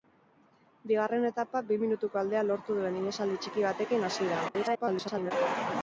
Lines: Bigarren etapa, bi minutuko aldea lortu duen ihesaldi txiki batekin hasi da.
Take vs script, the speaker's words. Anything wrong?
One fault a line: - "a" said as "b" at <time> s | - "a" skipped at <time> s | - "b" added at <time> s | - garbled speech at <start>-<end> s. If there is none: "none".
- garbled speech at 4.5-5.3 s